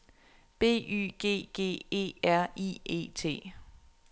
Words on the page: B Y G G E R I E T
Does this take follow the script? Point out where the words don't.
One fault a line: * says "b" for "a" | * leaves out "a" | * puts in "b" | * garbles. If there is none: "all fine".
all fine